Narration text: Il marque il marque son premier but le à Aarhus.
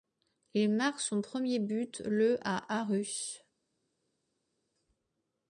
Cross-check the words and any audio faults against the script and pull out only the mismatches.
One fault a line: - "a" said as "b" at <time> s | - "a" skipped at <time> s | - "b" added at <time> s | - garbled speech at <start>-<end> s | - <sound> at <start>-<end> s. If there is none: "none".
- "il marque" skipped at 1.0 s